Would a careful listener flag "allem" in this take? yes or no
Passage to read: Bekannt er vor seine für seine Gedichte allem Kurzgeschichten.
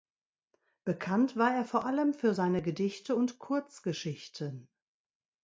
yes